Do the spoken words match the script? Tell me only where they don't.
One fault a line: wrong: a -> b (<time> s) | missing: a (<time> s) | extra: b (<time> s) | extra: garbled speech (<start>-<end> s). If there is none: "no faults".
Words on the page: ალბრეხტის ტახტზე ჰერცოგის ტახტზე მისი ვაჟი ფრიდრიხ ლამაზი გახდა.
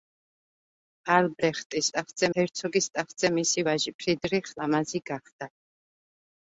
no faults